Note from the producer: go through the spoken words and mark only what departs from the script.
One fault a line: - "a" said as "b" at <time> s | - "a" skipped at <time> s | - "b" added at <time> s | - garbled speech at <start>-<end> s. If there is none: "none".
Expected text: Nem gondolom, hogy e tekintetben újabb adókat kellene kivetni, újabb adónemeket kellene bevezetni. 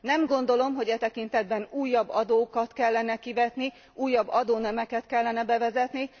none